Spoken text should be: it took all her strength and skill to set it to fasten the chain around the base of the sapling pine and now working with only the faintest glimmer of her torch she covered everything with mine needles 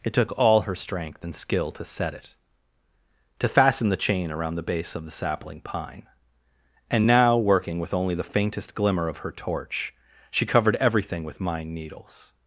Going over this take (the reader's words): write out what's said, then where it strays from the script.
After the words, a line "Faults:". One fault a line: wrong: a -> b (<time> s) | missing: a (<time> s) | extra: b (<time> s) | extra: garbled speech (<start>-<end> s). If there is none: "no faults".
it took all her strength and skill to set it to fasten the chain around the base of the sapling pine and now working with only the faintest glimmer of her torch she covered everything with mine needles
Faults:
no faults